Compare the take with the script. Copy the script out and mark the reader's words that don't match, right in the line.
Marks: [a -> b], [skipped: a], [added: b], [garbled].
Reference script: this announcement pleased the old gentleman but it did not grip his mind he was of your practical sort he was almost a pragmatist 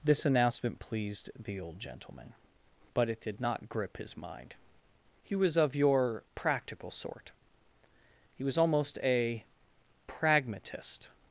this announcement pleased the old gentleman but it did not grip his mind he was of your practical sort he was almost a pragmatist